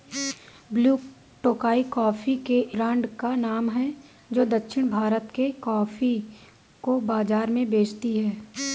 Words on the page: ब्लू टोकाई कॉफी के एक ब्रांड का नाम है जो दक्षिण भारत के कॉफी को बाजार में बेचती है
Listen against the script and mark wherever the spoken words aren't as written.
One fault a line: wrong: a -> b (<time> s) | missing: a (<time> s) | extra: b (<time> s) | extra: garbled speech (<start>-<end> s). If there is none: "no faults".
missing: एक (2.6 s)